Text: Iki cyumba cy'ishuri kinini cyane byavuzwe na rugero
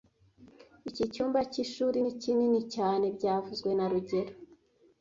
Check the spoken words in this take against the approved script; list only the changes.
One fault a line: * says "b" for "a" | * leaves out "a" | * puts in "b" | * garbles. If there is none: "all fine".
* puts in "ni"